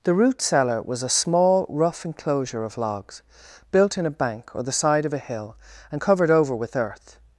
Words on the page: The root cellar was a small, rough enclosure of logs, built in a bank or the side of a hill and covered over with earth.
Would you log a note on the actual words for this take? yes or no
no